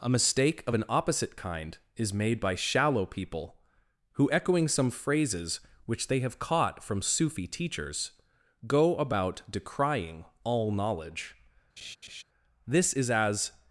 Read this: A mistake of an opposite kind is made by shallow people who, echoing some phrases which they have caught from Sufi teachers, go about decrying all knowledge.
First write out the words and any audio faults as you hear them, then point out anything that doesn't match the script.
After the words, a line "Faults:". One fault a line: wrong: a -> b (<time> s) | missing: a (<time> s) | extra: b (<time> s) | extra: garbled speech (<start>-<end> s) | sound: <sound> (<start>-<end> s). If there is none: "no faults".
A mistake of an opposite kind is made by shallow people who, echoing some phrases which they have caught from Sufi teachers, go about decrying all knowledge. This is as
Faults:
sound: laugh (11.8-12.2 s)
extra: This is as (12.7 s)